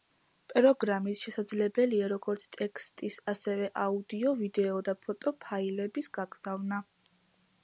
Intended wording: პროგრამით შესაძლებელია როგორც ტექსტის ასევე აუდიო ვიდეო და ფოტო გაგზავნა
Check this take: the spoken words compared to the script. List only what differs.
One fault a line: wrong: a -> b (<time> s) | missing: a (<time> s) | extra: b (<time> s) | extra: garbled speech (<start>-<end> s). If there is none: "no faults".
extra: ფაილების (5.5 s)